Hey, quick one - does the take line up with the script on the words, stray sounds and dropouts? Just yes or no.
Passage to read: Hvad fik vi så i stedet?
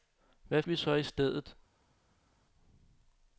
no